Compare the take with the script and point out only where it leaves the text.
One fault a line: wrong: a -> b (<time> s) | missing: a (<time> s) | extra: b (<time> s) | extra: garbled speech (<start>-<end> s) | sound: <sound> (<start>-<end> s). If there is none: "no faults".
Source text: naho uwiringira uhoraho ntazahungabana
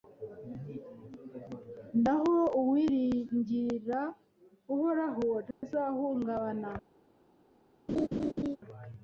sound: dropout (5.5-5.6 s)
sound: laugh (7.9-8.6 s)